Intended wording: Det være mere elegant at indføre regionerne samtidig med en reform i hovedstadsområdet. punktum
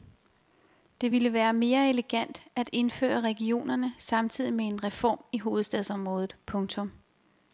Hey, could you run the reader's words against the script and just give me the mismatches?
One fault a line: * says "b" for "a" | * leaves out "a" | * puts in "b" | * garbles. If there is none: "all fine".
* puts in "ville"